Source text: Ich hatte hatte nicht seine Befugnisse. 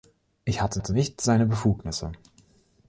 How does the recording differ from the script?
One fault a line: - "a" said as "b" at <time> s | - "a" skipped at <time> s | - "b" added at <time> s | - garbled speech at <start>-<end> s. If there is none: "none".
none